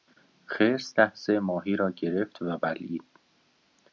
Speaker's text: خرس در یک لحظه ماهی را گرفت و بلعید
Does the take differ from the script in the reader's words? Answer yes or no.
yes